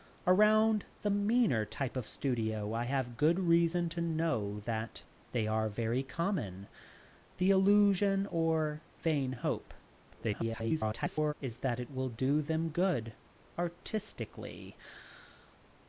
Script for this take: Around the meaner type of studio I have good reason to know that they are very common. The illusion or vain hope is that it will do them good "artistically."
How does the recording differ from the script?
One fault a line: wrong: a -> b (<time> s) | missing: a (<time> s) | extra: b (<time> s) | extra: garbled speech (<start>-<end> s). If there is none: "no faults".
extra: garbled speech (10.1-11.3 s)